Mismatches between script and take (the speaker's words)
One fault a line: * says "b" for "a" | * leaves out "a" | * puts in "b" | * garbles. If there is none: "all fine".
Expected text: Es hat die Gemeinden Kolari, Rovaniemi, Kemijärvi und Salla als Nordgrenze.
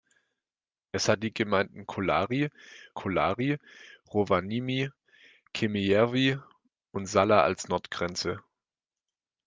* puts in "Kolari"